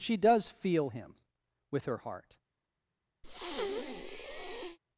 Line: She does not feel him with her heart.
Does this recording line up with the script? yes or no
no